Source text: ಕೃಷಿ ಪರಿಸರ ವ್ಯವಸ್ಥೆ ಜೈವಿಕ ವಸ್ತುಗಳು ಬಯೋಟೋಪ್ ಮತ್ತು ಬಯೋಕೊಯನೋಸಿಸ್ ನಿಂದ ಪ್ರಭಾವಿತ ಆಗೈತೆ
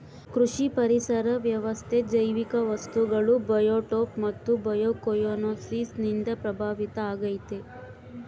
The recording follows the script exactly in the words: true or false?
true